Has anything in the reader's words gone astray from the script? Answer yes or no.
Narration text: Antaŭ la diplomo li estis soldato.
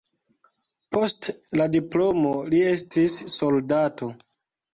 yes